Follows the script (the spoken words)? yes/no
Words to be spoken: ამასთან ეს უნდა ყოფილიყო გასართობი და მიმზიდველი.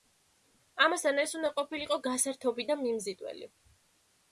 yes